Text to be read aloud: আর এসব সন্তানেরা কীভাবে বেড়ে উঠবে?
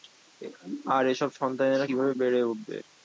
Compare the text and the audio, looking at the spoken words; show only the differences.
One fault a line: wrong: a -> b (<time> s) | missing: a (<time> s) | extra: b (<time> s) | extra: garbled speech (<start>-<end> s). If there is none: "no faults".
no faults